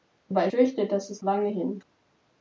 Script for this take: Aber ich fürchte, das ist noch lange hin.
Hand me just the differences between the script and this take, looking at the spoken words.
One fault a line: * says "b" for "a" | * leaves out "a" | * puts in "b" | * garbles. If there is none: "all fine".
* leaves out "ich"
* leaves out "noch"